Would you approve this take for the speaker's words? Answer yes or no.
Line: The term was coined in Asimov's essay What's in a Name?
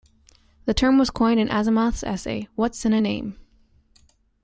yes